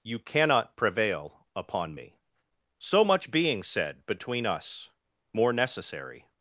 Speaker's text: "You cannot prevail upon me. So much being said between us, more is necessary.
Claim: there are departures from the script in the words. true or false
true